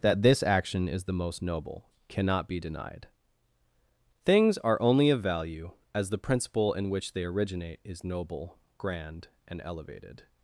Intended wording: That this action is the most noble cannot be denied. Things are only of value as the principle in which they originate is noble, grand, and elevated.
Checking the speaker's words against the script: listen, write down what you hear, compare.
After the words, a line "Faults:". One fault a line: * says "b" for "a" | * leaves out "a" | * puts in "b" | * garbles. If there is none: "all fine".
That this action is the most noble cannot be denied. Things are only of value as the principle in which they originate is noble, grand, and elevated.
Faults:
all fine